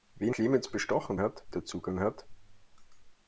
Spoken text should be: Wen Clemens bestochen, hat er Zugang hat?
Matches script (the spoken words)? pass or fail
pass